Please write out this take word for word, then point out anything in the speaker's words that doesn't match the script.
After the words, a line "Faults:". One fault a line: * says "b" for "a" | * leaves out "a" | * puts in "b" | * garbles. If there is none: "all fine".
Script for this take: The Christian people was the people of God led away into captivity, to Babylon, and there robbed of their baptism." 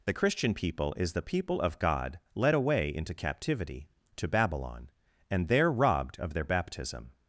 The Christian people is the people of God led away into captivity, to Babylon, and there robbed of their baptism."
Faults:
* says "is" for "was"